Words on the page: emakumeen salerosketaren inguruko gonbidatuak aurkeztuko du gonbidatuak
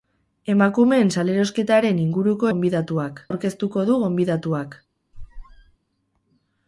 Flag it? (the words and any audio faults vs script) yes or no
yes